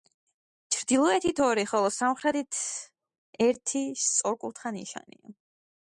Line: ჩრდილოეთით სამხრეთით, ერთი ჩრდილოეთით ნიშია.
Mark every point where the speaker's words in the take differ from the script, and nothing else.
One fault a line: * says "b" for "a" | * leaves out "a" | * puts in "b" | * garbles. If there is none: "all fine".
* puts in "ორი ხოლო"
* says "სწორკუთხა" for "ჩრდილოეთით"